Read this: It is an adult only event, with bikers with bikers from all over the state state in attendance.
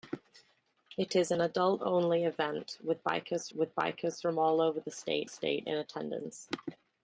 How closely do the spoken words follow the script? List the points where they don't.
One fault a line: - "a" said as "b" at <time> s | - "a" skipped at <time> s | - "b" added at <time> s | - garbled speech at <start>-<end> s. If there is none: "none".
none